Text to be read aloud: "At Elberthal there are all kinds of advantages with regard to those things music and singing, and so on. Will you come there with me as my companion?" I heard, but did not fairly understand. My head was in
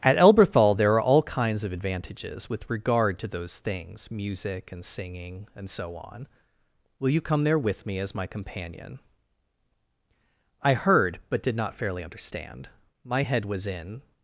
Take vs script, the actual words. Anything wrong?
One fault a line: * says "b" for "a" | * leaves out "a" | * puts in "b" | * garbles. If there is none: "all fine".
all fine